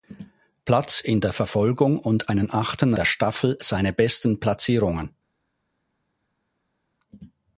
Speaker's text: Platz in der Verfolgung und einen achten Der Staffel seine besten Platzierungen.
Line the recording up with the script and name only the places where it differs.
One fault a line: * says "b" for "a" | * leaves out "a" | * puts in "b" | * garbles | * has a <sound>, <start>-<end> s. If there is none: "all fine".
all fine